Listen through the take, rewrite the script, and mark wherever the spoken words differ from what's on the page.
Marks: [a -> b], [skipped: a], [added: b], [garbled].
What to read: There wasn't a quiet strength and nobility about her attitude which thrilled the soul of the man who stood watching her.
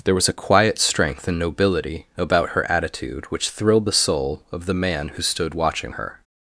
There [wasn't -> was] a quiet strength and nobility about her attitude which thrilled the soul of the man who stood watching her.